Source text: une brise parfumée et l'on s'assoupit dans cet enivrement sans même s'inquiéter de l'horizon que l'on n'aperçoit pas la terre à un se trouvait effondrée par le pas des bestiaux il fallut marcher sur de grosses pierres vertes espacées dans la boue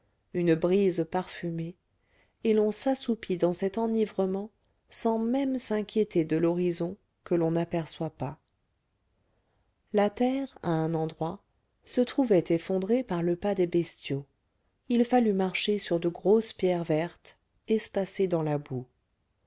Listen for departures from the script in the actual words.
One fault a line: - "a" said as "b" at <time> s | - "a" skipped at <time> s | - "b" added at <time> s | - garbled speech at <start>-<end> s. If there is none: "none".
- "endroit" added at 10.9 s